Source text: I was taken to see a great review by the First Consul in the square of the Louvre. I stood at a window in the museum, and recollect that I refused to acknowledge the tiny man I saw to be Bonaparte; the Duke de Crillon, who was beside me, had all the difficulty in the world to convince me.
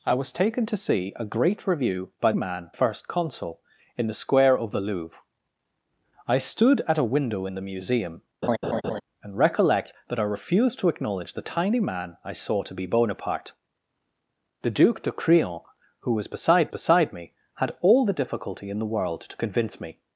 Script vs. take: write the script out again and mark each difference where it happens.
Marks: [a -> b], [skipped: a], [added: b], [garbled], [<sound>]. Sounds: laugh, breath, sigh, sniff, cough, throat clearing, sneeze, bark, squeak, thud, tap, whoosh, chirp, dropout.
I was taken to see a great review by [the -> man] First Consul in the square of the Louvre. I stood at a window in the museum, [laugh] and recollect that I refused to acknowledge the tiny man I saw to be Bonaparte; the Duke de Crillon, who was beside [added: beside] me, had all the difficulty in the world to convince me.